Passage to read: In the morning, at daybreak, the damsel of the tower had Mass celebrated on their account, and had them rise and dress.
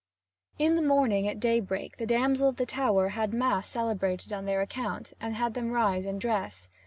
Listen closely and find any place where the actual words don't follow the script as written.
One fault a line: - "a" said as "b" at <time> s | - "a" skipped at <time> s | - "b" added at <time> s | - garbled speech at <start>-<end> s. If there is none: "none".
none